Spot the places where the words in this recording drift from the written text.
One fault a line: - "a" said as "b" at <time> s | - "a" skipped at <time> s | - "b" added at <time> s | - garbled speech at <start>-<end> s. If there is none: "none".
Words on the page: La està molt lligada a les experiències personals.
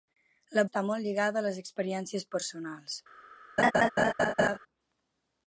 none